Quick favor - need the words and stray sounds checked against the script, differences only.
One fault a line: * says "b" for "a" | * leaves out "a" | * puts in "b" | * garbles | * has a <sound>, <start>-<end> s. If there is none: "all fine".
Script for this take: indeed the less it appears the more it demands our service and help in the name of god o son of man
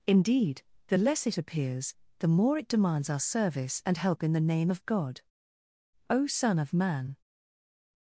all fine